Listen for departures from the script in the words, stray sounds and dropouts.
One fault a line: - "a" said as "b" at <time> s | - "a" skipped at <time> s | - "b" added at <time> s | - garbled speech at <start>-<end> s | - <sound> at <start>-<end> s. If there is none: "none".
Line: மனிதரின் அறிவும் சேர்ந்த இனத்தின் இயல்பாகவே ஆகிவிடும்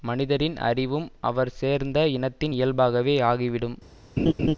- "அவர்" added at 1.2 s
- laugh at 4.2-4.6 s